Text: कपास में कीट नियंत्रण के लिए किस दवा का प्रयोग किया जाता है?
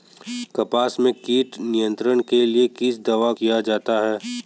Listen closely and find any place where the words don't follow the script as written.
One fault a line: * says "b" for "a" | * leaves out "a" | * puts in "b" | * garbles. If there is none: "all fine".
* leaves out "का प्रयोग"